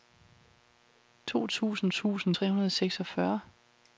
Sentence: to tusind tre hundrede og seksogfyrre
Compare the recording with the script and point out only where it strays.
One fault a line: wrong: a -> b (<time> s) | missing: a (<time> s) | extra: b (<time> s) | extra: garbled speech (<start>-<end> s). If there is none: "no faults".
extra: tusind (1.9 s)